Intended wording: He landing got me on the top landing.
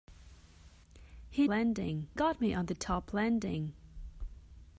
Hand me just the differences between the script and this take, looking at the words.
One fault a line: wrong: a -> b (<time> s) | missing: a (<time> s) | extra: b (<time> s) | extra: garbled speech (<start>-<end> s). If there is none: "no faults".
no faults